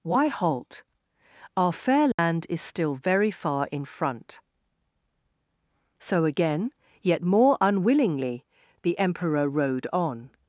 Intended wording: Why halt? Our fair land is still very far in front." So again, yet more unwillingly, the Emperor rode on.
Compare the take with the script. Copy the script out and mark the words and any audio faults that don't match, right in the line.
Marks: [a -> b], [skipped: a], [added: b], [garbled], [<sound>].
Why halt? Our fair land [dropout] is still very far in front." So again, yet more unwillingly, the Emperor rode on.